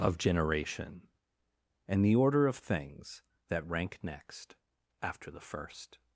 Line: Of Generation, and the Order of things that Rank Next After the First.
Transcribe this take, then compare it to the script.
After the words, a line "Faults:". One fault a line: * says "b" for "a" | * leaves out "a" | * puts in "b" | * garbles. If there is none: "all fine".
Of Generation, and the Order of things that Rank Next After the First.
Faults:
all fine